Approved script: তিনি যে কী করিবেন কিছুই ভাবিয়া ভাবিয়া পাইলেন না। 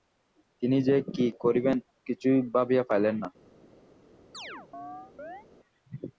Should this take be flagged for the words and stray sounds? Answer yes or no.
yes